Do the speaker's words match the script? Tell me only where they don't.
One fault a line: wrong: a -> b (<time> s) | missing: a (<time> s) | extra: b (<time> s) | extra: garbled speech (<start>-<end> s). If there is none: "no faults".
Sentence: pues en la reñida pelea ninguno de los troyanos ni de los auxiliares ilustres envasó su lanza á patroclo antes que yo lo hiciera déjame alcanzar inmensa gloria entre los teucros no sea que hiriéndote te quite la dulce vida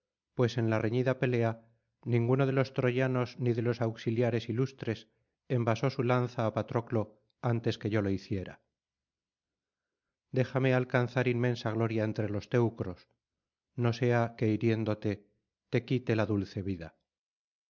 no faults